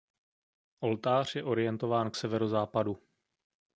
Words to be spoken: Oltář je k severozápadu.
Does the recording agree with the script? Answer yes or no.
no